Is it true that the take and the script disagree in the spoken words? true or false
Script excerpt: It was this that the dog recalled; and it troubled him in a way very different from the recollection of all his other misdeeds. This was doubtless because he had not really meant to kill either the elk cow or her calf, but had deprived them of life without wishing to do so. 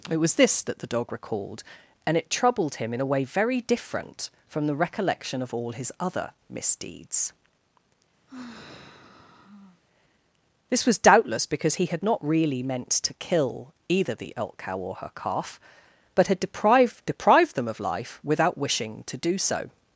true